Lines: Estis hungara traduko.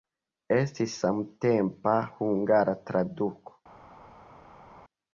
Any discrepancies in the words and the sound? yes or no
yes